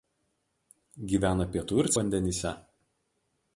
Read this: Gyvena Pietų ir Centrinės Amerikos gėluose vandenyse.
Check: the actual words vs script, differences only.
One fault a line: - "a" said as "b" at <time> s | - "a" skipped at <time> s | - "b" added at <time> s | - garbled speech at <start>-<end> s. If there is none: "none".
- "Centrinės Amerikos gėluose" skipped at 1.9 s